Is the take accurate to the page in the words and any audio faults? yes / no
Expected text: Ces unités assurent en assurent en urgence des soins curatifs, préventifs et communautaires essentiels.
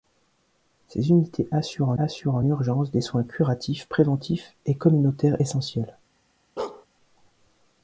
no